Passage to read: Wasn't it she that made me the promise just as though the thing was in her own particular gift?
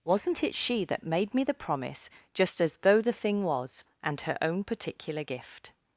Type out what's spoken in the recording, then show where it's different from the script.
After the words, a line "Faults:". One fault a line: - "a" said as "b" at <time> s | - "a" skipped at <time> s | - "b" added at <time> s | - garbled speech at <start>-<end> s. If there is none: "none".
Wasn't it she that made me the promise just as though the thing was and her own particular gift?
Faults:
- "in" said as "and" at 4.0 s